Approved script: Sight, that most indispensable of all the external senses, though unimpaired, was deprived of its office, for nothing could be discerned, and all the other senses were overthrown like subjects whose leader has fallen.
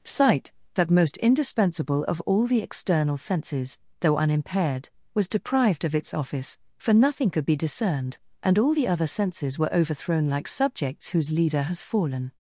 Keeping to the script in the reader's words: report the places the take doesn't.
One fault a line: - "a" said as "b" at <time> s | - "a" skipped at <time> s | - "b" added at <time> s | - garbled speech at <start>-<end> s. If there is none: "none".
none